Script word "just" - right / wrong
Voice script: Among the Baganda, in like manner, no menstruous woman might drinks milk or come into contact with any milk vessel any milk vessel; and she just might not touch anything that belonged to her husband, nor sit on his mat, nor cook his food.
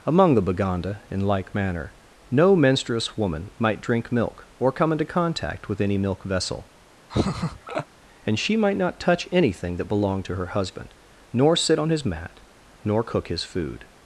wrong